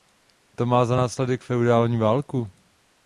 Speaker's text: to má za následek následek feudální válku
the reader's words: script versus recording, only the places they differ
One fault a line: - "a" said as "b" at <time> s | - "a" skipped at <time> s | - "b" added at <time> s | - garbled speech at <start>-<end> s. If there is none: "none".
- "následek" skipped at 1.4 s